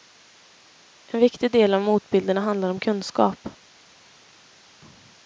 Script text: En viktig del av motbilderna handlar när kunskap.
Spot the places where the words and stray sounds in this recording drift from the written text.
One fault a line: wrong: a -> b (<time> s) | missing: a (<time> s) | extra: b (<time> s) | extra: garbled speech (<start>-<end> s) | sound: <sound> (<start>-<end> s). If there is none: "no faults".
wrong: när -> om (2.7 s)